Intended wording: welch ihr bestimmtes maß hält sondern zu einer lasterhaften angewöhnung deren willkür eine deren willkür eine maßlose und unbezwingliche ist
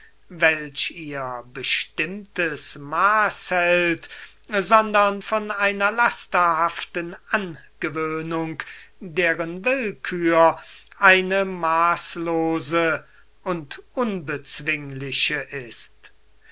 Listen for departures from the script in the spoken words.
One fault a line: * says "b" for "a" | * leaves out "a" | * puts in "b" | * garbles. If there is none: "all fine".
* says "von" for "zu"
* leaves out "deren willkür eine"